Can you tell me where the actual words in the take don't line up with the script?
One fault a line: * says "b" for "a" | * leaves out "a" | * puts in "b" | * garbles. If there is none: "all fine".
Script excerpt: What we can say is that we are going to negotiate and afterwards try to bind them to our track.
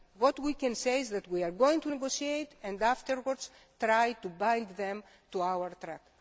all fine